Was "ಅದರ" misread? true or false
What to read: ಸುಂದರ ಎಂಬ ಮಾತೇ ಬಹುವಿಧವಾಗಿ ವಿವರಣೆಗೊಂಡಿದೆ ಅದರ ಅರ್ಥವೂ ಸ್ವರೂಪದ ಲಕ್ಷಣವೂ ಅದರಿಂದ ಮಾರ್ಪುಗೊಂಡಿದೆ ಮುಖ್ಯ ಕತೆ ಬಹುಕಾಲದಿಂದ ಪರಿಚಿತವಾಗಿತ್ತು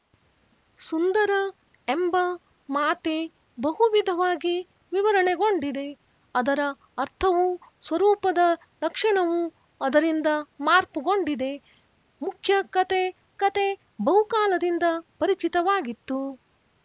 false